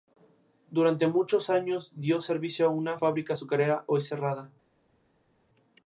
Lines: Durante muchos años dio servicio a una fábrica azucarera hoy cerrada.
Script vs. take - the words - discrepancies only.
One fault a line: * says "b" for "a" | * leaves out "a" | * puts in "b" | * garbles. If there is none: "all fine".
all fine